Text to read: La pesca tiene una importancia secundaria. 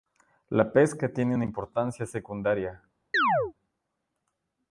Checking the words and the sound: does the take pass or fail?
fail